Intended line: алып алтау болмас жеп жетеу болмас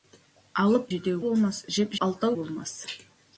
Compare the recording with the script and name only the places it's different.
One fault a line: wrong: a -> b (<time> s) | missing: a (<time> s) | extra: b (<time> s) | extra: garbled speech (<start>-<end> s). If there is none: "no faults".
wrong: алтау -> жетеу (0.9 s)
wrong: жетеу -> алтау (2.1 s)